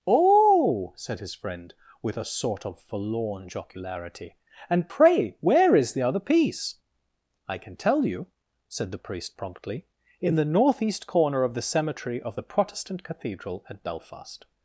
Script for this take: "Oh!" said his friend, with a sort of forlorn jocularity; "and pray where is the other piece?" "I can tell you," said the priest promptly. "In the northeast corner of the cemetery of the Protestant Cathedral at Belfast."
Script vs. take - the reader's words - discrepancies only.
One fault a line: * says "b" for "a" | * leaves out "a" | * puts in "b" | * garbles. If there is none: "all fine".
all fine